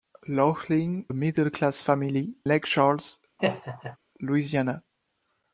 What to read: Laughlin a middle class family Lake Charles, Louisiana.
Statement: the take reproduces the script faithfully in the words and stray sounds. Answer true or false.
false